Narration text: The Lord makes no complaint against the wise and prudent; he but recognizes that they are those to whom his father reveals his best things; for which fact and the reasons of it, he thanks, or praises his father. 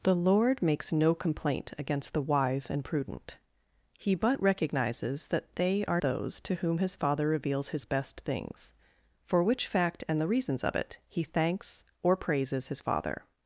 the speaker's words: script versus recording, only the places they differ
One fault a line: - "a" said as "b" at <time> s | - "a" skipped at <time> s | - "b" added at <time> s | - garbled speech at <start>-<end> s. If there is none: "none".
none